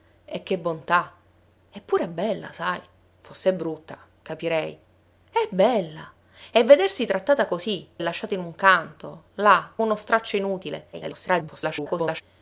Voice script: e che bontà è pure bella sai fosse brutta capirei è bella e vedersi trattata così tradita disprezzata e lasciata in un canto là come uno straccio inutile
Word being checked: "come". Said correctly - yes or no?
no